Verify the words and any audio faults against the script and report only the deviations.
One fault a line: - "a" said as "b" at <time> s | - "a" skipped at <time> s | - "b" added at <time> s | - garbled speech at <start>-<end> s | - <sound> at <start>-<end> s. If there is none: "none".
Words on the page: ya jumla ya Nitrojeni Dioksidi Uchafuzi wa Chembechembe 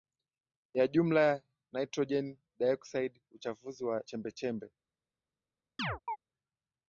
- chirp at 5.8-6.2 s